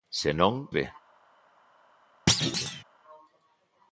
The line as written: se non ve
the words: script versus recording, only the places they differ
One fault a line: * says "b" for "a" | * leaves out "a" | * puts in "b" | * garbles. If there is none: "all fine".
all fine